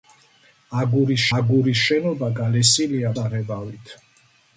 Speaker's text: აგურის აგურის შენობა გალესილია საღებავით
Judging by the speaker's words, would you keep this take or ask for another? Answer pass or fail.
pass